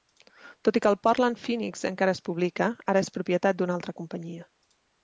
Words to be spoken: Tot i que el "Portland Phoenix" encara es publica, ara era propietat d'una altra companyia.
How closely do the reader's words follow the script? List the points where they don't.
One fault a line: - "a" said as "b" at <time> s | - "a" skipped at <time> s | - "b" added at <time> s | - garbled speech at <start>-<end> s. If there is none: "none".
- "era" said as "és" at 3.1 s